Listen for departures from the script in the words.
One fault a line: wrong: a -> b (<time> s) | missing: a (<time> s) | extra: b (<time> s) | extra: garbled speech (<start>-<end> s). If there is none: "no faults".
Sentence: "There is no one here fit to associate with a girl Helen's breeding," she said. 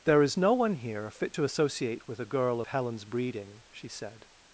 no faults